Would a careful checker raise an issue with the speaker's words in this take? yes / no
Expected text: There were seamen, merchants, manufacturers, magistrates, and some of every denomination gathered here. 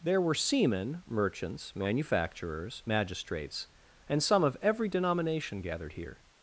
no